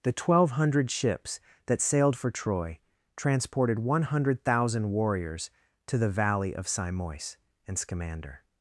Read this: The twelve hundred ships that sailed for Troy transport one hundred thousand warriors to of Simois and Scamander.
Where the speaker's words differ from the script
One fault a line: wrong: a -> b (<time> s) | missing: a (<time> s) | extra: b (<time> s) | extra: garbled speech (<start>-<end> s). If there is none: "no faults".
wrong: transport -> transported (3.2 s)
extra: the valley (6.0 s)